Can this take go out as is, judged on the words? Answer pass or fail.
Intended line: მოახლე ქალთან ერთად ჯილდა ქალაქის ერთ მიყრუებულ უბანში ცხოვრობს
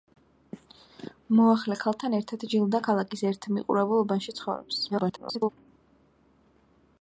fail